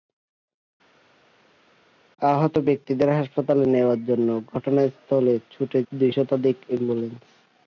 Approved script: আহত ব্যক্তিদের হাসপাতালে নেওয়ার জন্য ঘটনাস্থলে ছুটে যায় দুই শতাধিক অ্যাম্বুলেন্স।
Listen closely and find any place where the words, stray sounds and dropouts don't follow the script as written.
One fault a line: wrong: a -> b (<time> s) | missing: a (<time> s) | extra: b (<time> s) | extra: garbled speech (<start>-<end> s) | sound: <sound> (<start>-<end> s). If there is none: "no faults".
missing: যায় (5.8 s)